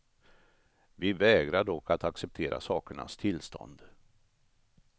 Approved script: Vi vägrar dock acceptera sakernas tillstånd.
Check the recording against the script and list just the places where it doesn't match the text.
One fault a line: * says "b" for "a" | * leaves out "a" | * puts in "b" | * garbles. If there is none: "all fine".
* puts in "att"